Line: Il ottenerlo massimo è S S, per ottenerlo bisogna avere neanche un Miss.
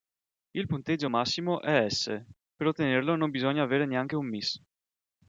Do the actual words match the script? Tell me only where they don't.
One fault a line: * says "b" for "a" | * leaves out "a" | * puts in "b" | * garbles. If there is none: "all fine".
* says "punteggio" for "ottenerlo"
* leaves out "S"
* puts in "non"